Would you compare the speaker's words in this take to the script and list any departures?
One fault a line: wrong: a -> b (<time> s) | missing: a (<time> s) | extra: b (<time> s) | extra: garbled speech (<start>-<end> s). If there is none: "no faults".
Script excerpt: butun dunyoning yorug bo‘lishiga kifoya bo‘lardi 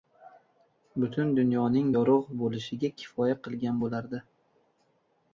extra: qilgan (3.5 s)